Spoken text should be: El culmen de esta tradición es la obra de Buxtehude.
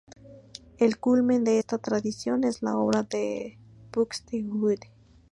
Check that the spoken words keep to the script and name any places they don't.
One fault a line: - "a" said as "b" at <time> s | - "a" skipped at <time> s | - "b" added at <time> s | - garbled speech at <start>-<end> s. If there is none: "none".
none